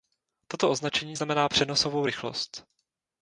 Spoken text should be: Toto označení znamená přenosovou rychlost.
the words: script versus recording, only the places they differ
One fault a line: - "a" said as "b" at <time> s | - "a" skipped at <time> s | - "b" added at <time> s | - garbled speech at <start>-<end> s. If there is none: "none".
none